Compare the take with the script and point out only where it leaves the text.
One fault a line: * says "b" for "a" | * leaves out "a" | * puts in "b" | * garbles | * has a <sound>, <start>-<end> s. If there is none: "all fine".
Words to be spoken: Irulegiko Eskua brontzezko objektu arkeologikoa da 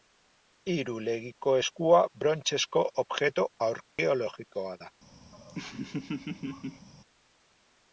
* has a dropout, 3.9-4.0 s
* has a laugh, 5.3-6.9 s